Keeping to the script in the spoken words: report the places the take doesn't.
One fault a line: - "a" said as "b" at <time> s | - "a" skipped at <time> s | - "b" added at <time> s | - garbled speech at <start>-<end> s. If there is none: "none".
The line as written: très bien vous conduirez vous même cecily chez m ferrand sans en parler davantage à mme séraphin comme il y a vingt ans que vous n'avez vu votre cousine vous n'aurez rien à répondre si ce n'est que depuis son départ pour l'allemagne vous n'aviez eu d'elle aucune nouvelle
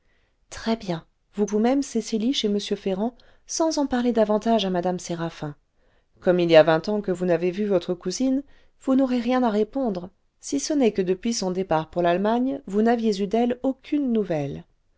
- "conduirez" skipped at 1.4 s